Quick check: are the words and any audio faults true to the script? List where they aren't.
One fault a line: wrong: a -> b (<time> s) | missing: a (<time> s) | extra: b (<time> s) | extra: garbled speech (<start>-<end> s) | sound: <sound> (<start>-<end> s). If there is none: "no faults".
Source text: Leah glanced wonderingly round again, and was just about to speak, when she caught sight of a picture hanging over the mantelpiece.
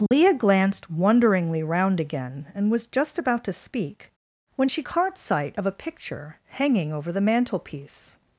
sound: dropout (0.1-0.1 s)